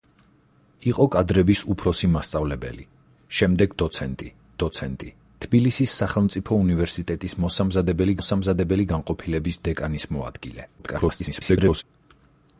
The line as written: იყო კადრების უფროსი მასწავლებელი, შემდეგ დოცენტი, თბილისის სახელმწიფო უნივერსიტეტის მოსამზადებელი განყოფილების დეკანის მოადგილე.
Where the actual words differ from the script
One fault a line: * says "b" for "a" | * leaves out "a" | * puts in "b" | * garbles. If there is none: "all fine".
* puts in "დოცენტი"
* puts in "მოსამზადებელი"
* garbles